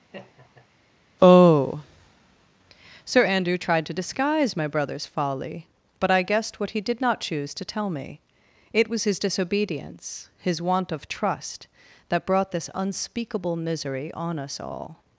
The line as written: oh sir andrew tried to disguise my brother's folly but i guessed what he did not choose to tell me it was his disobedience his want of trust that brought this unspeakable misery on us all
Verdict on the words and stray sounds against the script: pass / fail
fail